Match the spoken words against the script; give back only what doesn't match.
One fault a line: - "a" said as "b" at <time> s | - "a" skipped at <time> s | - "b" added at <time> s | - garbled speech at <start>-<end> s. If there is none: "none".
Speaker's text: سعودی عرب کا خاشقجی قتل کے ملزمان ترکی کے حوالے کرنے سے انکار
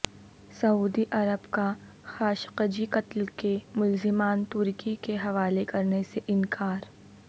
none